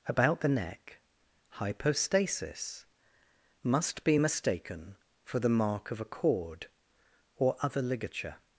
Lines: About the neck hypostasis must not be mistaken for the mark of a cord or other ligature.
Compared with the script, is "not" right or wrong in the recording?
wrong